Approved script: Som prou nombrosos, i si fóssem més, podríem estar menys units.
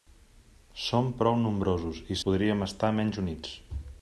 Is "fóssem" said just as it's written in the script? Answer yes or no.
no